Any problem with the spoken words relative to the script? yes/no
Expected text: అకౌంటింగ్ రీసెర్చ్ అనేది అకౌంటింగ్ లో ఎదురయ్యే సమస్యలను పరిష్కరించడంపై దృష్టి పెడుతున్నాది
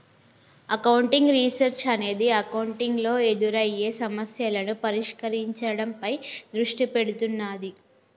no